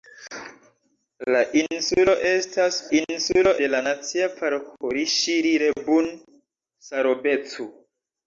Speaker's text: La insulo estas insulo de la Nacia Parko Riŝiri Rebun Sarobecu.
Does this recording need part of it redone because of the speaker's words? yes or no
no